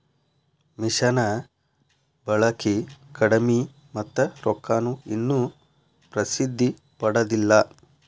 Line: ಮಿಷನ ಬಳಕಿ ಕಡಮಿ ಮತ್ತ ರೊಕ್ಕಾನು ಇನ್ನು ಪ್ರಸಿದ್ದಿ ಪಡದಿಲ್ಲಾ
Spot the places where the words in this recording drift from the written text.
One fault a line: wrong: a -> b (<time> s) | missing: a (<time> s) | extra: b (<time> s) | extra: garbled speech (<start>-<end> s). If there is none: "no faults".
no faults